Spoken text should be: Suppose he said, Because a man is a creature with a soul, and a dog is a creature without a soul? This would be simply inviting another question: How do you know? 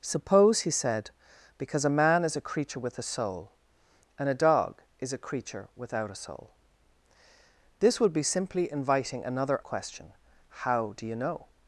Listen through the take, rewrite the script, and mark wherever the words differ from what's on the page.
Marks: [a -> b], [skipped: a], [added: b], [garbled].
Suppose he said, Because a man is a creature with a soul, and a dog is a creature without a soul? This would be simply inviting another question: How do you know?